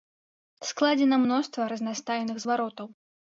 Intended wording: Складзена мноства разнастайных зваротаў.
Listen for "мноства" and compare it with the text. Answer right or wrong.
right